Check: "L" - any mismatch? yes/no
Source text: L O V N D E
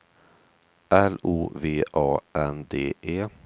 no